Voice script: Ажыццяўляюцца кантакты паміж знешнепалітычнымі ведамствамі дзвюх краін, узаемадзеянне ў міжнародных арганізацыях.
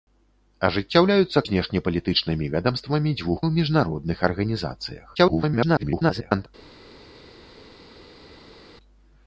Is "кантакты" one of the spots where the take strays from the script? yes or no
yes